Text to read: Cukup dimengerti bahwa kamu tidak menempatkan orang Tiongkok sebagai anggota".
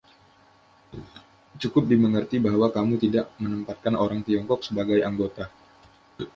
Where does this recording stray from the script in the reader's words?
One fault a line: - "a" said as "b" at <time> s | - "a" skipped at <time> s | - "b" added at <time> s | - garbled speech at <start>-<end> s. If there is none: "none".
none